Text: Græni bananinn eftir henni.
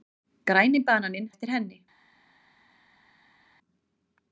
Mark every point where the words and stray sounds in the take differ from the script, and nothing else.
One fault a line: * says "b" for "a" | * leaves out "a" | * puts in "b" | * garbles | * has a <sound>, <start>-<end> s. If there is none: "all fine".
all fine